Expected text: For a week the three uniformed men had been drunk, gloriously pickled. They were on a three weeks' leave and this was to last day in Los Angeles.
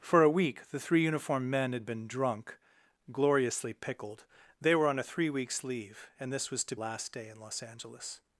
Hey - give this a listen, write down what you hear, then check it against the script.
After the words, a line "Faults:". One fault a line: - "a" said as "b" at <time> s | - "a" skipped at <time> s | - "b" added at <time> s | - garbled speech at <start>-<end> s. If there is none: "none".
For a week the three uniformed men had been drunk, gloriously pickled. They were on a three weeks' leave and this was to last day in Los Angeles.
Faults:
none